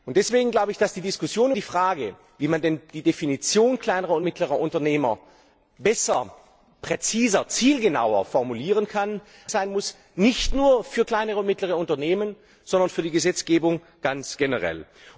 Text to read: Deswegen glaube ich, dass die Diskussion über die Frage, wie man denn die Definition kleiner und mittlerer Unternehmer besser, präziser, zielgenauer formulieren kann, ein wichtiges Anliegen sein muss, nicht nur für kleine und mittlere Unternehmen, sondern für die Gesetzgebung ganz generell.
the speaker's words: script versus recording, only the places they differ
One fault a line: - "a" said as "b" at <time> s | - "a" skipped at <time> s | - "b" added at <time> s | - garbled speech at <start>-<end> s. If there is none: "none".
- "über" skipped at 1.5 s
- "ein wichtiges Anliegen" skipped at 9.2 s